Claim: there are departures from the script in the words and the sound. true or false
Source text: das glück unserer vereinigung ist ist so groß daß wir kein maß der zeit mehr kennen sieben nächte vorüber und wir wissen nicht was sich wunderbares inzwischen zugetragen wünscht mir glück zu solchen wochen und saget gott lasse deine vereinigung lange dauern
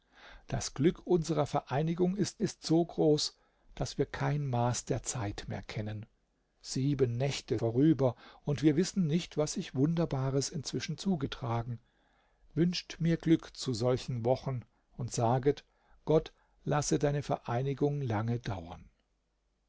false